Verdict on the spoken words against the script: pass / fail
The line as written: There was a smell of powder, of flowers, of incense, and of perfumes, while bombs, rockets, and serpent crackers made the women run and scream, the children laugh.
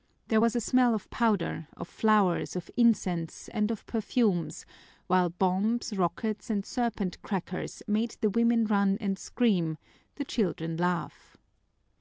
pass